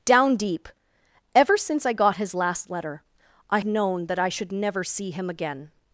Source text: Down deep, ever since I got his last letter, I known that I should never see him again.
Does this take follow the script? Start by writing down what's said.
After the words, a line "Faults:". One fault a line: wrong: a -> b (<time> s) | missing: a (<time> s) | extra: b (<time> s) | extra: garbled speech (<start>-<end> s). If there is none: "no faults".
Down deep, ever since I got his last letter, I known that I should never see him again.
Faults:
no faults